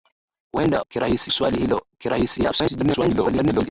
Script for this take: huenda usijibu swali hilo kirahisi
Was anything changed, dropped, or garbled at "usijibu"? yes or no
yes